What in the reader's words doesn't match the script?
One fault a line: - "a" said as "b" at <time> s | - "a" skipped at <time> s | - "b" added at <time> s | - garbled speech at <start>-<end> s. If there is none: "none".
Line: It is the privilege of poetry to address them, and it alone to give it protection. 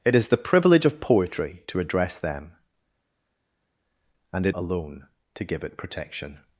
none